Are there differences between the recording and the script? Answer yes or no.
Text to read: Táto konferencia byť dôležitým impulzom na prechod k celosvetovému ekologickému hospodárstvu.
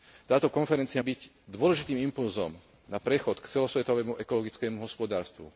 no